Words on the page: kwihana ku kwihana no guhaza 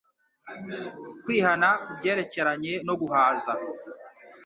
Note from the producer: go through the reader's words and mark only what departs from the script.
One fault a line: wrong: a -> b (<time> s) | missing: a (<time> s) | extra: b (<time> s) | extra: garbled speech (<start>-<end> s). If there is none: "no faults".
wrong: kwihana -> byerekeranye (2.0 s)